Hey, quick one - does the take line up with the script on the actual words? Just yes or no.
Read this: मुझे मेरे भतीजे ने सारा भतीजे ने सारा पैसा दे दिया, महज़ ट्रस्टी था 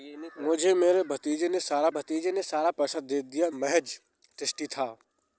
yes